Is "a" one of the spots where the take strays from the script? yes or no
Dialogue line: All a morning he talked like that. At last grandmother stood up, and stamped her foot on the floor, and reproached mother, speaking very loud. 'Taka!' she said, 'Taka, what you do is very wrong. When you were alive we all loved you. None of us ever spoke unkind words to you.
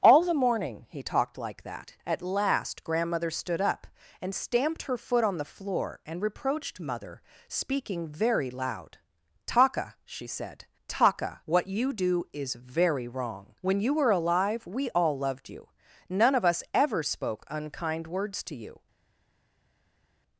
yes